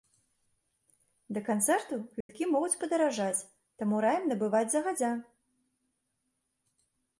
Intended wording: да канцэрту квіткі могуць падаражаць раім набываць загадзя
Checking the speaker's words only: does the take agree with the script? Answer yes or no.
no